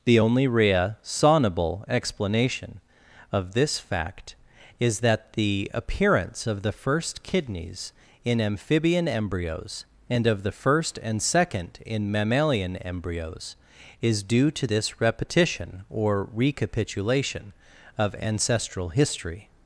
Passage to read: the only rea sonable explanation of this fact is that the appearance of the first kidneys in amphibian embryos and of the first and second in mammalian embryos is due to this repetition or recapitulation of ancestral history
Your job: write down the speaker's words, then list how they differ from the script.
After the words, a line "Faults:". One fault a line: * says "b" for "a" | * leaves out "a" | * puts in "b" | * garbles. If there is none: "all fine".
the only rea sonable explanation of this fact is that the appearance of the first kidneys in amphibian embryos and of the first and second in mammalian embryos is due to this repetition or recapitulation of ancestral history
Faults:
all fine